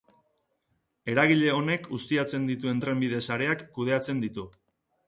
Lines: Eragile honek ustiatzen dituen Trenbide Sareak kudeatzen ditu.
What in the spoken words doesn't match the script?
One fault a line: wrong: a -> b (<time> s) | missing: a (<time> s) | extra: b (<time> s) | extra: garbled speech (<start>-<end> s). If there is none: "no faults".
no faults